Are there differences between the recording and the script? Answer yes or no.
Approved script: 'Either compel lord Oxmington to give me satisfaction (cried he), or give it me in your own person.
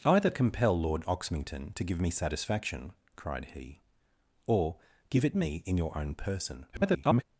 yes